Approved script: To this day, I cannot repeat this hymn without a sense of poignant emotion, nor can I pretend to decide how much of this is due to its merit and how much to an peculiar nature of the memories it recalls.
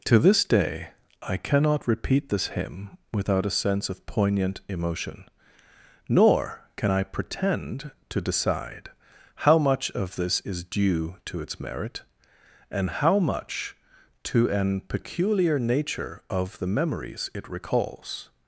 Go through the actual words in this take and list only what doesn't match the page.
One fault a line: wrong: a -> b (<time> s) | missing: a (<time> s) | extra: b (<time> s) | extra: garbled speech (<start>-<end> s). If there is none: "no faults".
no faults